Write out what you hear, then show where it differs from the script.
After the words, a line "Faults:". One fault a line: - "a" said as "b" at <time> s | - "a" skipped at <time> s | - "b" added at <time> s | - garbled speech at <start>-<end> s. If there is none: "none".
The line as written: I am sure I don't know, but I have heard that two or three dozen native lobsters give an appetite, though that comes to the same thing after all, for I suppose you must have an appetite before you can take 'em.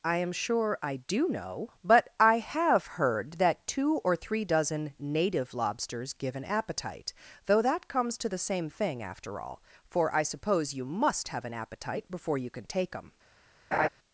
I am sure I do know, but I have heard that two or three dozen native lobsters give an appetite, though that comes to the same thing after all, for I suppose you must have an appetite before you can take 'em.
Faults:
- "don't" said as "do" at 1.0 s